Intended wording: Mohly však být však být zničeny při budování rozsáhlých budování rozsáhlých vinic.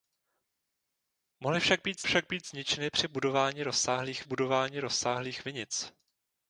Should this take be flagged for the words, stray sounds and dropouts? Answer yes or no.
no